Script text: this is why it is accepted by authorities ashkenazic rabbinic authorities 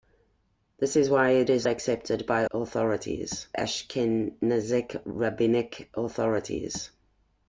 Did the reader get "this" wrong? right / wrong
right